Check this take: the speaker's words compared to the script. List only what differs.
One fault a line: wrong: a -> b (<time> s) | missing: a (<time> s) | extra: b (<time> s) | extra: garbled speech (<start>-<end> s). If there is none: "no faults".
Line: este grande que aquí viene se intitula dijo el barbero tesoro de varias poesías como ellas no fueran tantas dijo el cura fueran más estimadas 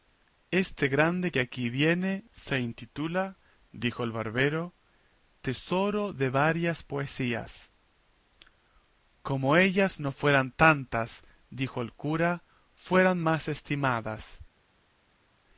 no faults